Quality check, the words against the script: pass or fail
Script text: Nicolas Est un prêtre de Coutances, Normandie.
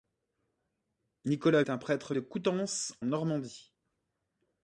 pass